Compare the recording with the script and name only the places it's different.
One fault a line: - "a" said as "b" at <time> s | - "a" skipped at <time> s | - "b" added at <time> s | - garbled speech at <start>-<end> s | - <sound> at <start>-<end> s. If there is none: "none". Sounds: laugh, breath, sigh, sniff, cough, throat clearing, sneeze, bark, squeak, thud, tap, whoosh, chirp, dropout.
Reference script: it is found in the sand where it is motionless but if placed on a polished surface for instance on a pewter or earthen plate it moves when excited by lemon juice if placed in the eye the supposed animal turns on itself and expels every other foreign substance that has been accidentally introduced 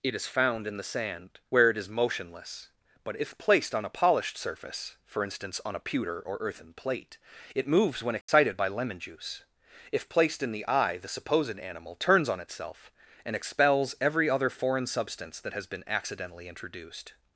- dropout at 8.2-8.3 s